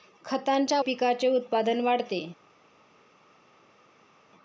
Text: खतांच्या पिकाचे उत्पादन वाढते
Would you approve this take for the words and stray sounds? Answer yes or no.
yes